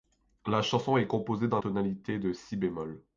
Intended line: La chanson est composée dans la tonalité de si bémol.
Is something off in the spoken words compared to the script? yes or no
yes